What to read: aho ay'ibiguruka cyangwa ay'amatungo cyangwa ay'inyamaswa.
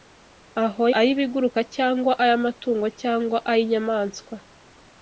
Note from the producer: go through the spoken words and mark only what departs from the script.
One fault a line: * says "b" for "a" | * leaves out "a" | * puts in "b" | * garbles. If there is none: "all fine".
all fine